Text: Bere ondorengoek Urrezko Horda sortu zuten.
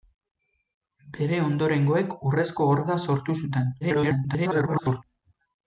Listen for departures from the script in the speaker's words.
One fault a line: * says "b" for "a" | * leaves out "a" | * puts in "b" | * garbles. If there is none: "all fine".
* garbles